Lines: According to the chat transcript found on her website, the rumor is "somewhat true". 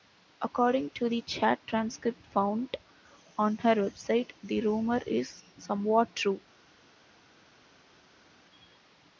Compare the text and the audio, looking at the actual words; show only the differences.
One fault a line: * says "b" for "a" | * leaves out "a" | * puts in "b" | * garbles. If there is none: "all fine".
all fine